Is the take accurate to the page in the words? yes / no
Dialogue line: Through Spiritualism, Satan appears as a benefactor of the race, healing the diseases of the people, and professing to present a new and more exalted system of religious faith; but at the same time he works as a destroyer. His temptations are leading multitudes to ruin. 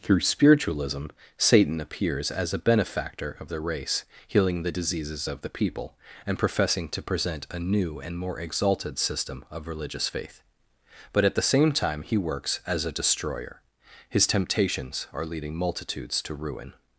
yes